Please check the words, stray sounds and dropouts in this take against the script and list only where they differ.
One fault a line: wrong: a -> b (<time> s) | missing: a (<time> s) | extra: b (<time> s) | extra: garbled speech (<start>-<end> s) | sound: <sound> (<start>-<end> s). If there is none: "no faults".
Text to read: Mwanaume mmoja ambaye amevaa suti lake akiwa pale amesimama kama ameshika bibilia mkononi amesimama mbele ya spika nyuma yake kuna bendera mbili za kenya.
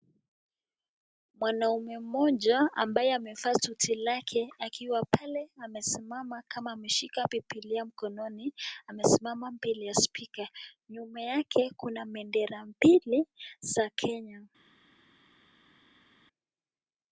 no faults